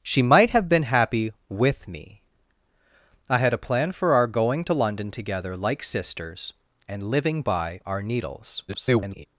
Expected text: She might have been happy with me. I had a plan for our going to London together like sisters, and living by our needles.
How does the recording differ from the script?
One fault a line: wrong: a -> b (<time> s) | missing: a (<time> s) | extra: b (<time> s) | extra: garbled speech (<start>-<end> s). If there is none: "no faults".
extra: garbled speech (8.7-9.3 s)